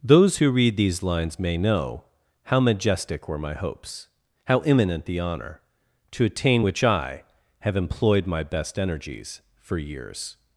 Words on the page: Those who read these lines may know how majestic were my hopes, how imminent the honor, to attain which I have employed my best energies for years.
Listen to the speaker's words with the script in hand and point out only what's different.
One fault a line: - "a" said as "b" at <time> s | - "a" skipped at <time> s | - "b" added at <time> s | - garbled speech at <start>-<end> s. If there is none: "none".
none